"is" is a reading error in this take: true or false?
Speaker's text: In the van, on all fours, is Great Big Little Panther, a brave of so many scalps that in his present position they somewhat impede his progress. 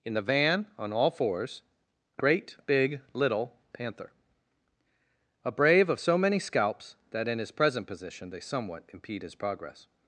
true